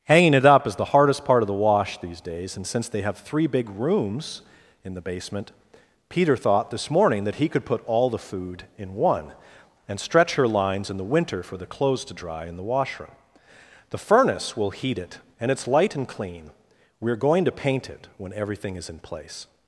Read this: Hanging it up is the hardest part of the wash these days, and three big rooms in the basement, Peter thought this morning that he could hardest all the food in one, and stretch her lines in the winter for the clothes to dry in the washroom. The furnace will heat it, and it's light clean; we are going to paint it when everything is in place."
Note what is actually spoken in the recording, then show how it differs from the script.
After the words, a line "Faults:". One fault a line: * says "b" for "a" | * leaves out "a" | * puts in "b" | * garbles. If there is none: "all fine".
Hanging it up is the hardest part of the wash these days, and since they have three big rooms in the basement, Peter thought this morning that he could put all the food in one, and stretch her lines in the winter for the clothes to dry in the washroom. The furnace will heat it, and it's light and clean; we are going to paint it when everything is in place."
Faults:
* puts in "since they have"
* says "put" for "hardest"
* puts in "and"